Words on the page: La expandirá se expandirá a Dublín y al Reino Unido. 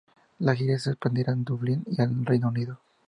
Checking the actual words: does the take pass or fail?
fail